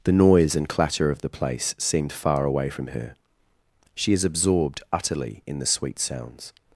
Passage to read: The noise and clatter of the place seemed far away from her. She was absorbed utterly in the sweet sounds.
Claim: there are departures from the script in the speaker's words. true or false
true